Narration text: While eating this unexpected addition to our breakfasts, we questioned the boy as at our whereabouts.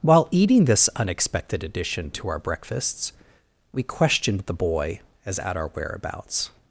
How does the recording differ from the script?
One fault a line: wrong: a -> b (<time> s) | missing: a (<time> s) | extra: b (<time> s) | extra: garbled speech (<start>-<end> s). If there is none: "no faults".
no faults